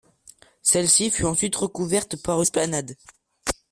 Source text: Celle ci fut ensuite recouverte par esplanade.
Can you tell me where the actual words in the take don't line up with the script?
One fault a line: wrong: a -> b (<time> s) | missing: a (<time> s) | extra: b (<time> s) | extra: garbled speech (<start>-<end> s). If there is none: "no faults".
no faults